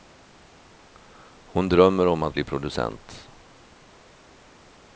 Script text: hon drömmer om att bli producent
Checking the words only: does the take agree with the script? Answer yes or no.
yes